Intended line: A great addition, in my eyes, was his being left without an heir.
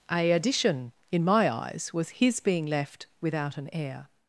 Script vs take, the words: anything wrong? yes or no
yes